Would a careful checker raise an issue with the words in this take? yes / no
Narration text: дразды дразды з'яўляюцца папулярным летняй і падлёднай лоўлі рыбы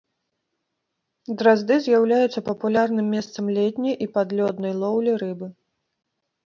yes